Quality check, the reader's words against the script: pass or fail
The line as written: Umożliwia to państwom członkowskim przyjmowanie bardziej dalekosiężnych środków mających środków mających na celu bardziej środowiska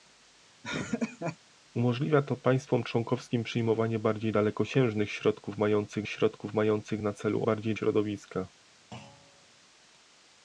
pass